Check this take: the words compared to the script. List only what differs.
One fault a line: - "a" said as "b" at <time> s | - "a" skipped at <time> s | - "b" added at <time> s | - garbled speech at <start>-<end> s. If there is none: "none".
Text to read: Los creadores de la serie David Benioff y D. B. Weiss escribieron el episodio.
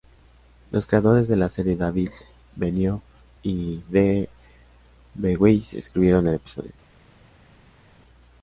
none